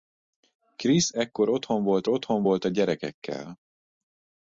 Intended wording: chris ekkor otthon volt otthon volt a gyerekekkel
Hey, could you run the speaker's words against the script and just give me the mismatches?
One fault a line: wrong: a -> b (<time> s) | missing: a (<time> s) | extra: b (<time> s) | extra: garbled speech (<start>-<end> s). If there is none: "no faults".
no faults